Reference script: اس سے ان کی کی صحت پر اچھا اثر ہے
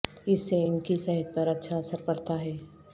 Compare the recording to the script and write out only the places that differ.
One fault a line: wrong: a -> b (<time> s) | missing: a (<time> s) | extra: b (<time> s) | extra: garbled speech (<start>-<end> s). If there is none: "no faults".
missing: کی (1.0 s)
extra: پڑتا (2.0 s)